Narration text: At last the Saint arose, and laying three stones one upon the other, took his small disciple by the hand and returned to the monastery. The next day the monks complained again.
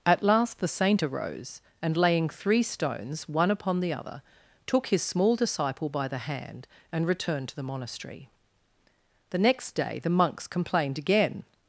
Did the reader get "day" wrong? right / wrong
right